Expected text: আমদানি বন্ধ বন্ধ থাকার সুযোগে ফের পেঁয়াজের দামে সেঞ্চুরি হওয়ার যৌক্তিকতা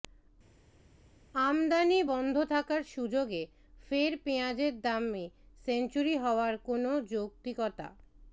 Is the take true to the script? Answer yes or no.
no